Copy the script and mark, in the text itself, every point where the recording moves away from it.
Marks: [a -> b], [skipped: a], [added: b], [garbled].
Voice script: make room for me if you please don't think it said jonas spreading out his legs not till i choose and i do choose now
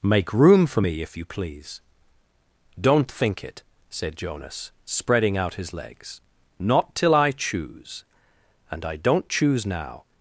make room for me if you please don't think it said jonas spreading out his legs not till i choose and i [do -> don't] choose now